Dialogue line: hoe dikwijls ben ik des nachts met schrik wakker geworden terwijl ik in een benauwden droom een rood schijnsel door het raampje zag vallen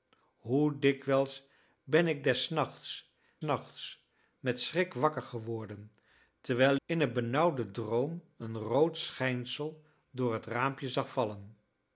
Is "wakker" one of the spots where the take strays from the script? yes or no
no